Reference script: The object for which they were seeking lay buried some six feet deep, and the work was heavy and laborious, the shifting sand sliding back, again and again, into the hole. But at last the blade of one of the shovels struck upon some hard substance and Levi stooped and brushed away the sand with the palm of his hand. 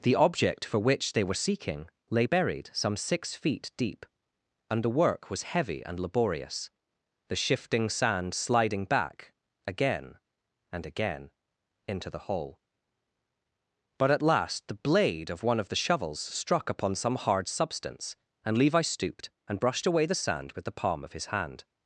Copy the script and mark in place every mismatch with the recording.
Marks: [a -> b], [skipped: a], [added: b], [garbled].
The object for which they were seeking lay buried some six feet deep, and the work was heavy and laborious, the shifting sand sliding back, again and again, into the hole. But at last the blade of one of the shovels struck upon some hard substance and Levi stooped and brushed away the sand with the palm of his hand.